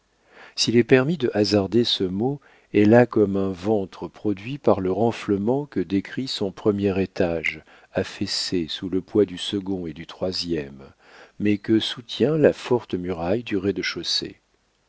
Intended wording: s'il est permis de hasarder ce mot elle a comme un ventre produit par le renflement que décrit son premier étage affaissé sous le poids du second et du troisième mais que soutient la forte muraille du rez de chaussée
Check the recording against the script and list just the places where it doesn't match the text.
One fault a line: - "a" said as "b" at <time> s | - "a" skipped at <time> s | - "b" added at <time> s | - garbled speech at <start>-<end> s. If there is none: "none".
none